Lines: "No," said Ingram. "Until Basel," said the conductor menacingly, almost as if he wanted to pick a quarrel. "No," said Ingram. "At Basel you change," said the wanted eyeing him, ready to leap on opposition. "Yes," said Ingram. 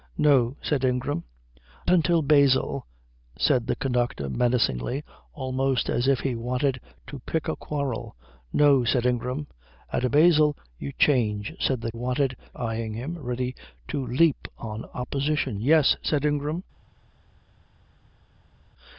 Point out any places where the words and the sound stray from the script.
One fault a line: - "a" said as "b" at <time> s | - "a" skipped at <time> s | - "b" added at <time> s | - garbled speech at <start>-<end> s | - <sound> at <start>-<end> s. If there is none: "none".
none